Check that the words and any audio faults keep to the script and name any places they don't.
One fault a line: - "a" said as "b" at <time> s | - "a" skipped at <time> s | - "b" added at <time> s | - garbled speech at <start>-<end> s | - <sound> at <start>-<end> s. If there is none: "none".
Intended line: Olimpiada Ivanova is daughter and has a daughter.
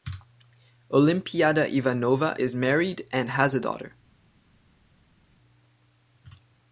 - "daughter" said as "married" at 2.5 s